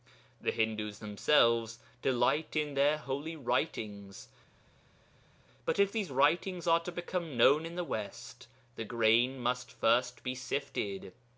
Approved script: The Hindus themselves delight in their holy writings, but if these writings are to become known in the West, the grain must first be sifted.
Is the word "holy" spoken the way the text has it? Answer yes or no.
yes